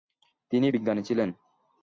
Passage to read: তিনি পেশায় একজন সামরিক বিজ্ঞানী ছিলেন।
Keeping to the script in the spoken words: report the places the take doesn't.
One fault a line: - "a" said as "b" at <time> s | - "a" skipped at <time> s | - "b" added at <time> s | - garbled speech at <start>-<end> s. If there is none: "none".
- "পেশায় একজন সামরিক" skipped at 0.7 s